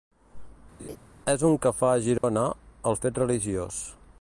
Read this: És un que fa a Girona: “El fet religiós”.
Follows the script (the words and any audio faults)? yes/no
no